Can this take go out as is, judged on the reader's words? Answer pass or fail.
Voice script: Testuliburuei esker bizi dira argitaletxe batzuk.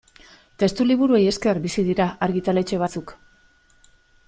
pass